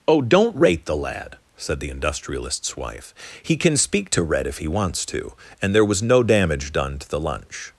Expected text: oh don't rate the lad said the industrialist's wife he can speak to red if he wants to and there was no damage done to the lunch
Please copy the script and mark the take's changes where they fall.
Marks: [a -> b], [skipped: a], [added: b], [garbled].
oh don't rate the lad said the industrialist's wife he can speak to red if he wants to and there was no damage done to the lunch